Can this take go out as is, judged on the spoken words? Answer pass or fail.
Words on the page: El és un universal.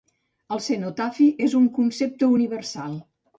fail